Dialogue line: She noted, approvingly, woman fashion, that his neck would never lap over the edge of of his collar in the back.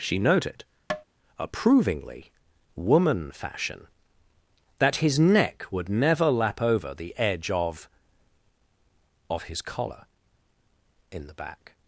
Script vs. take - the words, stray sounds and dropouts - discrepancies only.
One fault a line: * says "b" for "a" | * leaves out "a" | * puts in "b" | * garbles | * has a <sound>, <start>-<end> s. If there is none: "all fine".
* has a tap, 0.9-1.0 s